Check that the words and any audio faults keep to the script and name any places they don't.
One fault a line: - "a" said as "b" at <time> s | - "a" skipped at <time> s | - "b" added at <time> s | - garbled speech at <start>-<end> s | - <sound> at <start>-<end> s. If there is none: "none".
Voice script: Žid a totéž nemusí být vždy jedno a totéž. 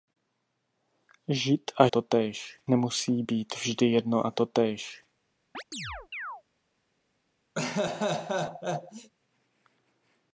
- chirp at 5.5-6.4 s
- laugh at 7.6-9.1 s